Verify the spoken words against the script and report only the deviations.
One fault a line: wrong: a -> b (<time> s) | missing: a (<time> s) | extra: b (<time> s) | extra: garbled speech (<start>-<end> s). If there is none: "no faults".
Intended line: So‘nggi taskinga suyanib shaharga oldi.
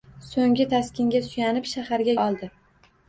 no faults